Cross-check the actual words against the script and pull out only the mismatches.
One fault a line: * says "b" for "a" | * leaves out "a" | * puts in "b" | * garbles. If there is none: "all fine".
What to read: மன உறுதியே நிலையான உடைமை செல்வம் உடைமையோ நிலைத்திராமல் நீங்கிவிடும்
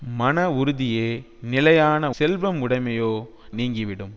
* leaves out "உடைமை"
* leaves out "நிலைத்திராமல்"